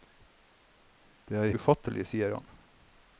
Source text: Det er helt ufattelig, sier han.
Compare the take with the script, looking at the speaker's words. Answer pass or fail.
fail